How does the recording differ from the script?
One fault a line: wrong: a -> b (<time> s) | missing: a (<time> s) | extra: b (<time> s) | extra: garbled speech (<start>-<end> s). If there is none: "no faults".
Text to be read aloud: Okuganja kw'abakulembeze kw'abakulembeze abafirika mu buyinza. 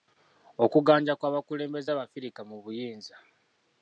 missing: kw'abakulembeze (1.9 s)